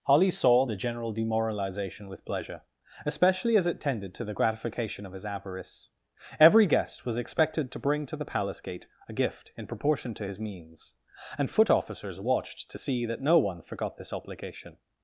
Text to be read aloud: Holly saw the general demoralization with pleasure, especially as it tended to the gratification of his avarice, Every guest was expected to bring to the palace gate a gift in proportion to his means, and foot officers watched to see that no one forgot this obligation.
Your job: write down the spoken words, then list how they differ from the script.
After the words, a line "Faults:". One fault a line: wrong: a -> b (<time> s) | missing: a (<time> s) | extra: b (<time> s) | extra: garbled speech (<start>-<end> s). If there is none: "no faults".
Holly saw the general demoralization with pleasure, especially as it tended to the gratification of his avarice, Every guest was expected to bring to the palace gate a gift in proportion to his means, and foot officers watched to see that no one forgot this obligation.
Faults:
no faults